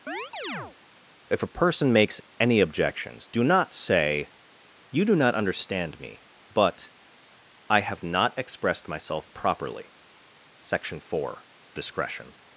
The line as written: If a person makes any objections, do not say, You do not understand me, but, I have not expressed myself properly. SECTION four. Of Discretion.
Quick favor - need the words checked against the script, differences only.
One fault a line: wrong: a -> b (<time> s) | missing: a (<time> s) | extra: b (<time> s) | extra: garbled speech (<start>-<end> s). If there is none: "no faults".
missing: Of (11.4 s)